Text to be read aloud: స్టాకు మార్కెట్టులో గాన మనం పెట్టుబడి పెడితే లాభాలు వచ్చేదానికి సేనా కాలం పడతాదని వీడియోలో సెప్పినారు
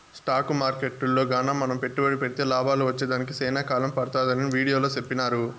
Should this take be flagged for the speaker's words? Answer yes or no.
no